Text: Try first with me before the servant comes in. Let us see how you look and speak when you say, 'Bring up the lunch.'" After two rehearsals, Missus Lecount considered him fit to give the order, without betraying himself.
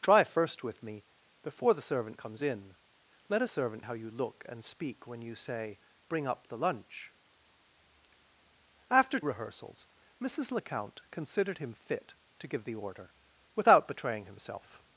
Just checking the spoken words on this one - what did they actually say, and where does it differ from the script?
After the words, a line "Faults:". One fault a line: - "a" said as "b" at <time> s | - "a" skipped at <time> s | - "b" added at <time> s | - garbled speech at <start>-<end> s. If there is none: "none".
Try first with me before the servant comes in. Let us servant how you look and speak when you say, 'Bring up the lunch.'" After rehearsals, Missus Lecount considered him fit to give the order, without betraying himself.
Faults:
- "see" said as "servant" at 3.5 s
- "two" skipped at 9.2 s